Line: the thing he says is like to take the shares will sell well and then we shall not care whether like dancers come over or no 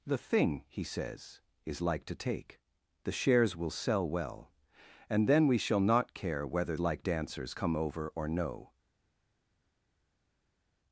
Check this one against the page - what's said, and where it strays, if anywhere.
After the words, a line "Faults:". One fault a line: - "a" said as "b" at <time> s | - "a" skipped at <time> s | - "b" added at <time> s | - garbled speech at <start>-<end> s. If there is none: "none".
the thing he says is like to take the shares will sell well and then we shall not care whether like dancers come over or no
Faults:
none